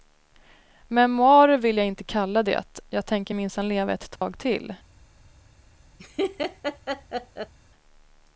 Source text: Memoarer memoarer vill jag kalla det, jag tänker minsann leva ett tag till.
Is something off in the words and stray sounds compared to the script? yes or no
yes